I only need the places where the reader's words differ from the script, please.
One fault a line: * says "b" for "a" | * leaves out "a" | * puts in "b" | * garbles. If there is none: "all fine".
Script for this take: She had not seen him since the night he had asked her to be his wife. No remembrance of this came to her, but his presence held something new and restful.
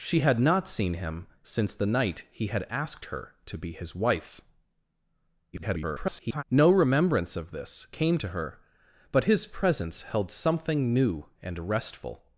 * garbles